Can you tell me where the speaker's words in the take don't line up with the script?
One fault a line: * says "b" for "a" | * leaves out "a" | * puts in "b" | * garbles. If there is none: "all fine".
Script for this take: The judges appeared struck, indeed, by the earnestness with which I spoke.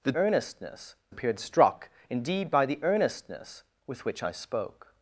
* says "earnestness" for "judges"